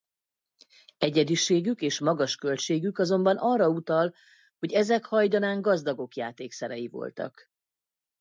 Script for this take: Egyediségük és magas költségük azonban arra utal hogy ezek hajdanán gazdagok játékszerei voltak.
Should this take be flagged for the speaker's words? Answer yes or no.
no